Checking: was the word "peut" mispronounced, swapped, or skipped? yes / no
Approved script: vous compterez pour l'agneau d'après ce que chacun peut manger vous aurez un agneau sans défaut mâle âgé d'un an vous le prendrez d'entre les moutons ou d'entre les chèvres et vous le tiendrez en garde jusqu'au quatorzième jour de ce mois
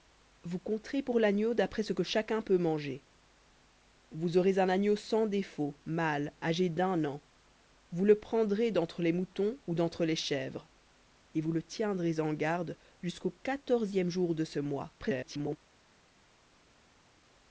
no